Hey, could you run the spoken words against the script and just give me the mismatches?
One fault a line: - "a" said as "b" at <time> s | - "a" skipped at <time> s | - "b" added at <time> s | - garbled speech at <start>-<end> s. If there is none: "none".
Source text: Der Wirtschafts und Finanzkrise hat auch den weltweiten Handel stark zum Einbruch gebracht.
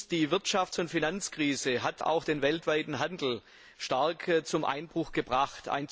- "Der" said as "Die" at 0.1 s